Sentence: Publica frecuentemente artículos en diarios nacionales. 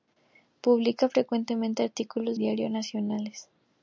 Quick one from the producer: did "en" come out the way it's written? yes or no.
no